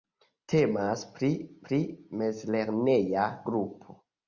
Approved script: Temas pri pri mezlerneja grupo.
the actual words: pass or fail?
pass